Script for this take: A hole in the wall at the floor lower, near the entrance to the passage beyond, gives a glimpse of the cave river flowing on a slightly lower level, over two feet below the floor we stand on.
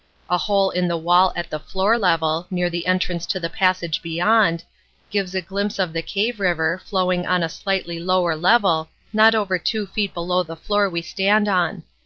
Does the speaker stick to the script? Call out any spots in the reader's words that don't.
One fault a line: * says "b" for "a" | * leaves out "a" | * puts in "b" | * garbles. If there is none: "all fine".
* says "level" for "lower"
* puts in "not"